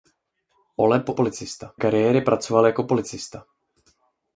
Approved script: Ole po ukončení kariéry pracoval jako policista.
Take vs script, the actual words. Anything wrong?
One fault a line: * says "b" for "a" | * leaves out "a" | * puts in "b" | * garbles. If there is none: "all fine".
* says "policista" for "ukončení"